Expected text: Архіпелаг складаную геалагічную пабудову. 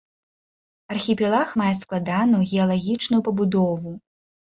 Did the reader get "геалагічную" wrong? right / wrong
right